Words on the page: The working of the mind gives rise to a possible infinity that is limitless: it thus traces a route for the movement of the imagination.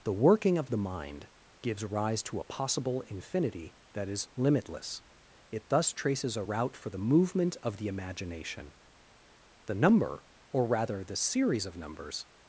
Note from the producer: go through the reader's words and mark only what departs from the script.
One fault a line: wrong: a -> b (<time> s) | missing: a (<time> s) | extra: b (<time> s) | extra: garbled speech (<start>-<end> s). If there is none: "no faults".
extra: The number or rather the series of numbers (9.7 s)